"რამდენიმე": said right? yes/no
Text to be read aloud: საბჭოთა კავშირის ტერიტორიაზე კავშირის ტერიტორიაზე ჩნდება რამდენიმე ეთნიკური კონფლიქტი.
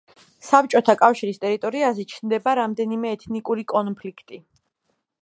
yes